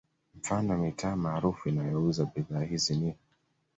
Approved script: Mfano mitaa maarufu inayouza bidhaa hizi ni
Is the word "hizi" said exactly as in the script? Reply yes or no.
yes